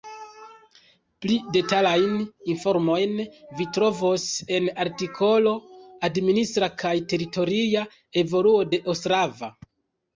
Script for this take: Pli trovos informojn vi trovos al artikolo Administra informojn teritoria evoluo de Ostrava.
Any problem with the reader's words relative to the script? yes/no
yes